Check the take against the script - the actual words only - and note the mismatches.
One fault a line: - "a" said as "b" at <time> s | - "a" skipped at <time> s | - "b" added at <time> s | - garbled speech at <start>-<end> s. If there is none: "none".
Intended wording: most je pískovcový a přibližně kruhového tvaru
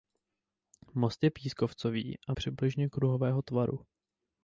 none